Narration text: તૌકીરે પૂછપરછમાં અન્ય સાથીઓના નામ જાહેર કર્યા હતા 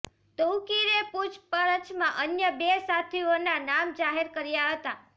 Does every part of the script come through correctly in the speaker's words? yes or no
no